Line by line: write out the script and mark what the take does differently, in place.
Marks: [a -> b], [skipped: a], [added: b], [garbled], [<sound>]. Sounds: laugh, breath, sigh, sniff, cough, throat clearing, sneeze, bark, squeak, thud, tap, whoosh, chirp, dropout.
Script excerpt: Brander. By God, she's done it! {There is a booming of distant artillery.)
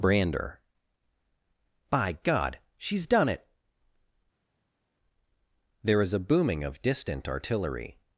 Brander. By God, she's done it! {There is a booming of distant artillery.)